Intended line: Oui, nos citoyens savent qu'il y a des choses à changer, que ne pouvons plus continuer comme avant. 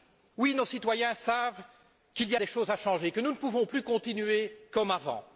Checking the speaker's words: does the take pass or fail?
fail